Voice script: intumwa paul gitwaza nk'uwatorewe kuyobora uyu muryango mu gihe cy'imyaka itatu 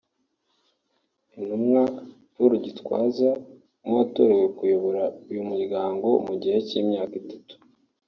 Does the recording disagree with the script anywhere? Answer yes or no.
no